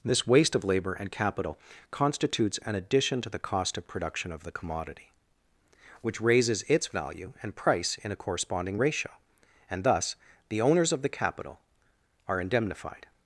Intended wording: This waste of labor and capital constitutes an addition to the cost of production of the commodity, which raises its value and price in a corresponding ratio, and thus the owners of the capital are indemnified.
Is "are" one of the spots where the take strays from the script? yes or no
no